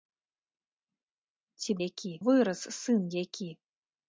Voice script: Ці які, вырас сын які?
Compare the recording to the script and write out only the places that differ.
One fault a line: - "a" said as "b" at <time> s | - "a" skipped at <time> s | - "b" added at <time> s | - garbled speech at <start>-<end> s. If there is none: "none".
none